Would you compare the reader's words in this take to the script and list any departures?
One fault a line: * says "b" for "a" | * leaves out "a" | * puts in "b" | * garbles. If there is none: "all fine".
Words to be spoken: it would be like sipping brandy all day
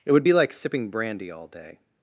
all fine